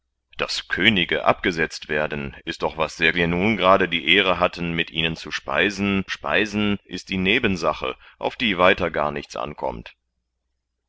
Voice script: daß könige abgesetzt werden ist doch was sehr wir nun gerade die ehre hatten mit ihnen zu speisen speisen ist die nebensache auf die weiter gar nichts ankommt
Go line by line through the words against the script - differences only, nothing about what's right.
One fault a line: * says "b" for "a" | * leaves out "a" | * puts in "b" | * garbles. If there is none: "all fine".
all fine